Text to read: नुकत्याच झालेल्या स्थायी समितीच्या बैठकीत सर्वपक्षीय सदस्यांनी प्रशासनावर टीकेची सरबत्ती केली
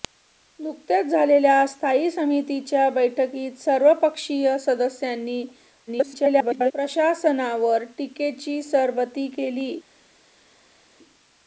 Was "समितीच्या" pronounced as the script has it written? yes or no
yes